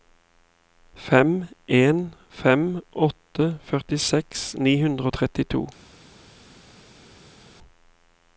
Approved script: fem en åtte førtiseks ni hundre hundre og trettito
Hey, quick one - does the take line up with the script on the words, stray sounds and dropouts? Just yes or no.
no